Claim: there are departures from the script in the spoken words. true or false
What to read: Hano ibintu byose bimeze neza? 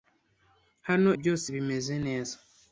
true